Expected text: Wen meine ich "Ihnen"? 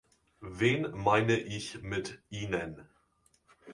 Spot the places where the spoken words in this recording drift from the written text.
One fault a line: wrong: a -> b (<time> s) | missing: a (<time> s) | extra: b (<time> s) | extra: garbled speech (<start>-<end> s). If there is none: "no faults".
extra: mit (1.8 s)